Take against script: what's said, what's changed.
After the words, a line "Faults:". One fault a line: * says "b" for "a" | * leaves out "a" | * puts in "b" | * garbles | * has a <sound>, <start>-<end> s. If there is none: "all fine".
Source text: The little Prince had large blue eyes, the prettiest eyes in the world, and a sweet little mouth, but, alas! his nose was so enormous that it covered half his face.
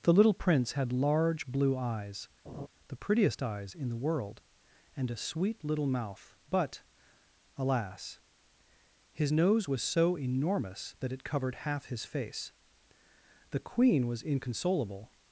The little Prince had large blue eyes, the prettiest eyes in the world, and a sweet little mouth, but, alas! his nose was so enormous that it covered half his face. The Queen was inconsolable
Faults:
* has a laugh, 2.5-2.7 s
* puts in "The Queen was inconsolable"